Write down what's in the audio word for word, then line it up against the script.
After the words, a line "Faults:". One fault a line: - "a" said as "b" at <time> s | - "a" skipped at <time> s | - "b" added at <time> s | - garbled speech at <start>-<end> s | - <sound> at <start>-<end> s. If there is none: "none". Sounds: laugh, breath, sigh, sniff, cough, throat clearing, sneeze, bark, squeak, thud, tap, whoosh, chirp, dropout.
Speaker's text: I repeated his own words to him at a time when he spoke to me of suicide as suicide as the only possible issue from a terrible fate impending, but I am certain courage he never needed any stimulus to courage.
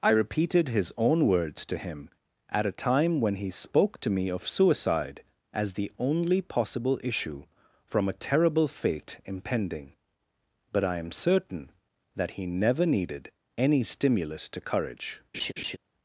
I repeated his own words to him at a time when he spoke to me of suicide as the only possible issue from a terrible fate impending, but I am certain that he never needed any stimulus to courage.
Faults:
- "suicide as" skipped at 5.7 s
- "courage" said as "that" at 12.2 s
- laugh at 15.3-15.8 s